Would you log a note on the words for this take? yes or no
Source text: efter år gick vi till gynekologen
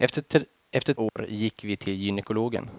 no